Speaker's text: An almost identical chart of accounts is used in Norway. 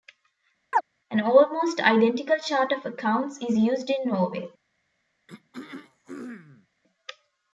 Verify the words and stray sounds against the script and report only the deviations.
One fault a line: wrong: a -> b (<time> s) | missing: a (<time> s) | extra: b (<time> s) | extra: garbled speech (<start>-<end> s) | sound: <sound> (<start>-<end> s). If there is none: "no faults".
sound: chirp (0.7-0.8 s)
sound: throat clearing (5.3-6.7 s)